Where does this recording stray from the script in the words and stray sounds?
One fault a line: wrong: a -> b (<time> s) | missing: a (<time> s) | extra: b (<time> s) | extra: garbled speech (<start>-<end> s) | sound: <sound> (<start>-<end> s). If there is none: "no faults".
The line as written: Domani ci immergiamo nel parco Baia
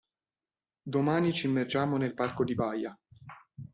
extra: di (2.4 s)